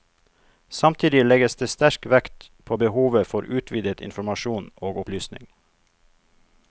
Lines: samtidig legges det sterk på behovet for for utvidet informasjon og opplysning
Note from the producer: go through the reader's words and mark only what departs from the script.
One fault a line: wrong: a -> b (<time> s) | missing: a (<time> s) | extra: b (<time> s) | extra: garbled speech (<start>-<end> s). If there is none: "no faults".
extra: vekt (2.1 s)
missing: for (3.4 s)